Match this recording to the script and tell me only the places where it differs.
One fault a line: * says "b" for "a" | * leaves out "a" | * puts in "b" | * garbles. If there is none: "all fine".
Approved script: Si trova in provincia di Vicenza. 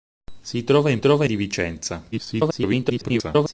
* says "trova" for "provincia"
* garbles